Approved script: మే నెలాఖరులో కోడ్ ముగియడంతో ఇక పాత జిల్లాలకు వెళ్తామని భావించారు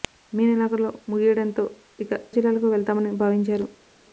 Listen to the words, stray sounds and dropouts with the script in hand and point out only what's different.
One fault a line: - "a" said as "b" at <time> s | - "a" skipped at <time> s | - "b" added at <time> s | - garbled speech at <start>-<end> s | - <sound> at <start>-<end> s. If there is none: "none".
- "కోడ్" skipped at 0.9 s
- "పాత" skipped at 2.1 s